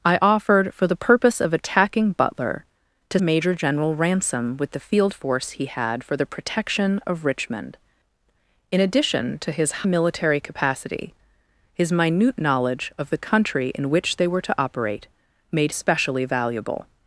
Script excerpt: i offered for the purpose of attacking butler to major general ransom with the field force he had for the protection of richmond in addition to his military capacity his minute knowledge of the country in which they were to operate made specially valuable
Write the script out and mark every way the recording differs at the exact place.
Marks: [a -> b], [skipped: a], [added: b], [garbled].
i offered for the purpose of attacking butler to major general ransom with the field force he had for the protection of richmond in addition to his military capacity his minute knowledge of the country in which they were to operate made specially valuable